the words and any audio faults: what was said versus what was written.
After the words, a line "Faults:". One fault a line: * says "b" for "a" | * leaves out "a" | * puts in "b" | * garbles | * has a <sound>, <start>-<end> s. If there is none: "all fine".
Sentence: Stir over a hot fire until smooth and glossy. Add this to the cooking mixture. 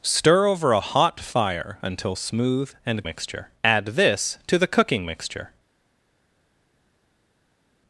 Stir over a hot fire until smooth and mixture. Add this to the cooking mixture.
Faults:
* says "mixture" for "glossy"